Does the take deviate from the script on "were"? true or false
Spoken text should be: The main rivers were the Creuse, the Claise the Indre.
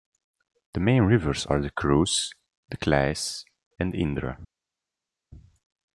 true